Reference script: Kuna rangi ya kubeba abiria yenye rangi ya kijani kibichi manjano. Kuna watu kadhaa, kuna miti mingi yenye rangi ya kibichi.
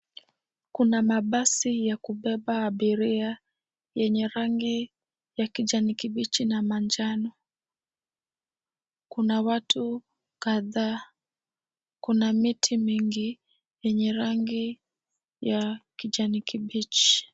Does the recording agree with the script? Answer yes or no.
no